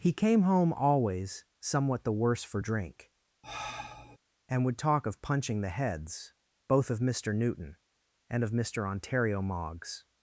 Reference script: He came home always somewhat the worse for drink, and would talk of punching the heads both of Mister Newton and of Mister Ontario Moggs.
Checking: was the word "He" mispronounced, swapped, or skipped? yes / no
no